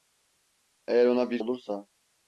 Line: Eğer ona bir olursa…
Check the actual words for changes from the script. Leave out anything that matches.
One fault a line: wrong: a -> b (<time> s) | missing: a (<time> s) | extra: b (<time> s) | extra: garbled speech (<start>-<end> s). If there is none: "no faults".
no faults